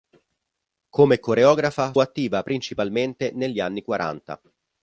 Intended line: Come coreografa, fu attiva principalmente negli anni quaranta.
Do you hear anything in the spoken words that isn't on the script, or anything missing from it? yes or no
yes